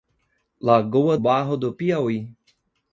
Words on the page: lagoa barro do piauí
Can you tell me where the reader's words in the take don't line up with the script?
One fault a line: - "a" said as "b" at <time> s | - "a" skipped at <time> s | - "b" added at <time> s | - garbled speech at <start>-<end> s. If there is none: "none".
none